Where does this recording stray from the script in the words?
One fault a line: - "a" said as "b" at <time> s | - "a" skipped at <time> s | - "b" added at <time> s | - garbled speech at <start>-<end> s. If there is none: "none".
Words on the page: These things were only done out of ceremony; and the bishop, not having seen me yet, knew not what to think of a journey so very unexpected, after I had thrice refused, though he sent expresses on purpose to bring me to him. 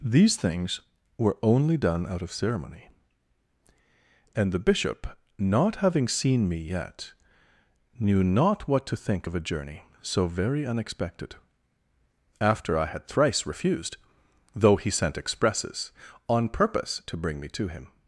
none